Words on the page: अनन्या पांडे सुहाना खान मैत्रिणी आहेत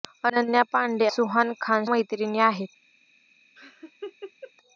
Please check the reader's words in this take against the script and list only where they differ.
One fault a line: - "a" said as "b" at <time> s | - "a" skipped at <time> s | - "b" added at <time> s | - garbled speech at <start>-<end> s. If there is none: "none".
none